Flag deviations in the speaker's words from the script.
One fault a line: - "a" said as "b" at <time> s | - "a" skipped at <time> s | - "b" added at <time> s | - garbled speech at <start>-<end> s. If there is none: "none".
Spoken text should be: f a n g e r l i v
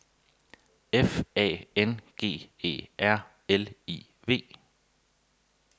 none